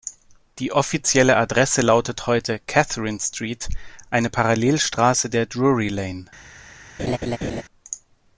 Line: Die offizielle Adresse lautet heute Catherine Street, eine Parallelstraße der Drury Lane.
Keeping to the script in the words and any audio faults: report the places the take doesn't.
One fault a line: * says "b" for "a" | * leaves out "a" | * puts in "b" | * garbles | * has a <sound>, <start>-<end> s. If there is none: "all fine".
* has a laugh, 7.0-7.6 s